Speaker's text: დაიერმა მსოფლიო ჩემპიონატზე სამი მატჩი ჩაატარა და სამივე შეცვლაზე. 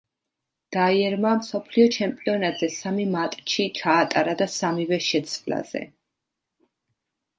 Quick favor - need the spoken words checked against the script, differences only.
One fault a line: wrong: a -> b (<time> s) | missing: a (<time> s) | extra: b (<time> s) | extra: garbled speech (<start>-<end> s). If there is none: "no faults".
no faults